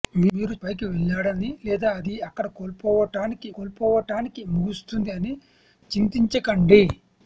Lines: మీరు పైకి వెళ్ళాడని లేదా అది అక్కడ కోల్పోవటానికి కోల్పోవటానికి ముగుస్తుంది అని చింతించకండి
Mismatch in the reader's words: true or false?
false